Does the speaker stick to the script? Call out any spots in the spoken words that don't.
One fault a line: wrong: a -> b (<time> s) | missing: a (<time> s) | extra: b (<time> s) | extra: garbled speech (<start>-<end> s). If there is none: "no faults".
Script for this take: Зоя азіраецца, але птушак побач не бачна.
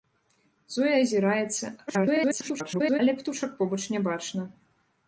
extra: garbled speech (1.9-3.0 s)